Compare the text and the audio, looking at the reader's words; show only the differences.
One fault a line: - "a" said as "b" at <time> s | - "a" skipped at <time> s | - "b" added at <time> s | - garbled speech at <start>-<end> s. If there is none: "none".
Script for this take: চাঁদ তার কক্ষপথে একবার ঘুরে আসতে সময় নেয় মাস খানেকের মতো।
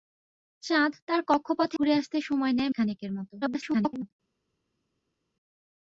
- "একবার" skipped at 1.8 s
- "মাস" skipped at 2.7 s
- garbled speech at 3.4-4.1 s